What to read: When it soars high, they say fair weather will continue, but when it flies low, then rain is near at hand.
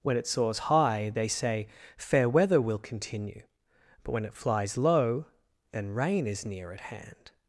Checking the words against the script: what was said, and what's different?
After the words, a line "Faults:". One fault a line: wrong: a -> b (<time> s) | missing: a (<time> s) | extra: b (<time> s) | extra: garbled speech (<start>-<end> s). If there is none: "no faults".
When it soars high, they say fair weather will continue, but when it flies low, then rain is near at hand.
Faults:
no faults